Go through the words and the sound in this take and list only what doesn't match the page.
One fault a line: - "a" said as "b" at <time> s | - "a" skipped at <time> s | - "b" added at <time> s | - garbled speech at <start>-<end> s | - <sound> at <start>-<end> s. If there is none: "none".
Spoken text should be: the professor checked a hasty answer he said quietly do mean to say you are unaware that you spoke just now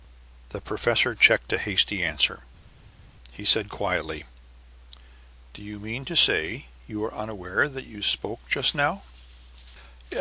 - "you" added at 5.6 s